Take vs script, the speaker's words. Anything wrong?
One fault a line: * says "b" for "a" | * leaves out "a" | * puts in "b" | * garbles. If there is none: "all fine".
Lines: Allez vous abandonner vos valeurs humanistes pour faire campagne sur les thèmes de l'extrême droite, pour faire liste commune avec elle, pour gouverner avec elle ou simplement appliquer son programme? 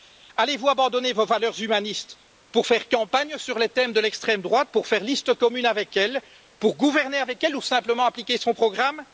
all fine